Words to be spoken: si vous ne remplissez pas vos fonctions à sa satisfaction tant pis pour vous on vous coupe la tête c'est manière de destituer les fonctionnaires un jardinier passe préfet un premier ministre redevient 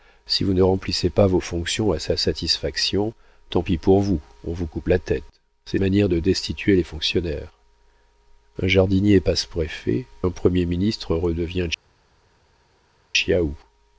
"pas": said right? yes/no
yes